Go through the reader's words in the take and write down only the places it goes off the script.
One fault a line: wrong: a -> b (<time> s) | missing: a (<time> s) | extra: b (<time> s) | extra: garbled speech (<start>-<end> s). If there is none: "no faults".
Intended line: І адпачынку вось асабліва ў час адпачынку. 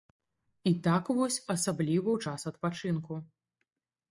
wrong: адпачынку -> так (0.9 s)